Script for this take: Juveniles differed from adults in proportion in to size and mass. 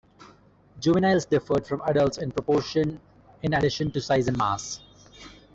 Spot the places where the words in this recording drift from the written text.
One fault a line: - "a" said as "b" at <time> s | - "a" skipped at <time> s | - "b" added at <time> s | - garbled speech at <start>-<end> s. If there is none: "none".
- "addition" added at 3.5 s